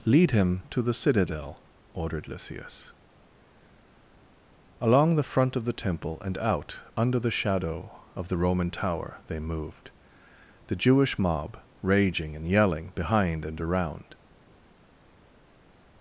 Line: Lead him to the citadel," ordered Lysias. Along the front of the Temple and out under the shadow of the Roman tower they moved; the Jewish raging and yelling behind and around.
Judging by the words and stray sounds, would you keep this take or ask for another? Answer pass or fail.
fail